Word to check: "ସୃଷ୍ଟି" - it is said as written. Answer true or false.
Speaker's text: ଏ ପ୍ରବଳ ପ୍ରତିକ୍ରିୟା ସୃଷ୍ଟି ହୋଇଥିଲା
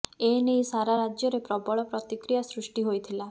true